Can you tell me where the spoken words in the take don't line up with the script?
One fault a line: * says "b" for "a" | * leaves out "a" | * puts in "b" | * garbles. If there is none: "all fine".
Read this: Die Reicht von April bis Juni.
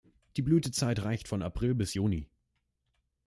* puts in "Blütezeit"